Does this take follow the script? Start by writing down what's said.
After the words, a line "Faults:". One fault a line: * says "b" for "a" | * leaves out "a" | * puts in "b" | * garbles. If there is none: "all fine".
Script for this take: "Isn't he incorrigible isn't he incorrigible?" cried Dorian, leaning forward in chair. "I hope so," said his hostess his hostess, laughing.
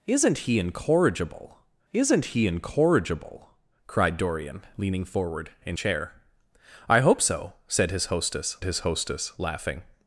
"Isn't he incorrigible isn't he incorrigible?" cried Dorian, leaning forward in chair. "I hope so," said his hostess his hostess, laughing.
Faults:
all fine